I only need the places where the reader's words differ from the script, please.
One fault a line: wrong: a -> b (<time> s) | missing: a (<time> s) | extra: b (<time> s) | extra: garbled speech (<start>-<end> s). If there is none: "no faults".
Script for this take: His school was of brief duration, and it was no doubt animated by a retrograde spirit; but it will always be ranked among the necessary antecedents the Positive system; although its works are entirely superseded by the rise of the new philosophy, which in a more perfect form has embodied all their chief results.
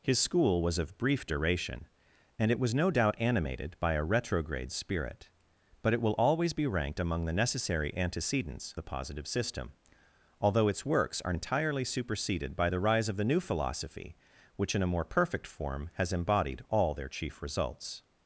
no faults